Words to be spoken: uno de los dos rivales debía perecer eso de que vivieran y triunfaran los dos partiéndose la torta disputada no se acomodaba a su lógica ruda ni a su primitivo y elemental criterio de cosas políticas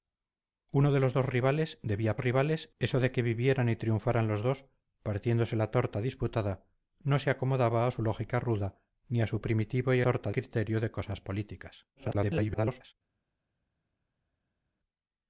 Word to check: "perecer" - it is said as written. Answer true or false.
false